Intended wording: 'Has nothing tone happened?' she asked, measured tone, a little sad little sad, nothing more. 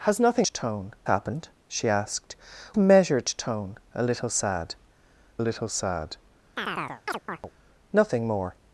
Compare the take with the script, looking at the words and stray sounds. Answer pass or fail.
fail